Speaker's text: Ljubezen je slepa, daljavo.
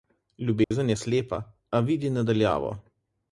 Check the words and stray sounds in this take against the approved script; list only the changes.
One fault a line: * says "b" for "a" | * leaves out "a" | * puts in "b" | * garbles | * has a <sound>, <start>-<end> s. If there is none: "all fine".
* has a dropout, 0.6-0.7 s
* puts in "a vidi na"